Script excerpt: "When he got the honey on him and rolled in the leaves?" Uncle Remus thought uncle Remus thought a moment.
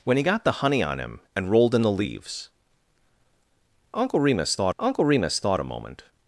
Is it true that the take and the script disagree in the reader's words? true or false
false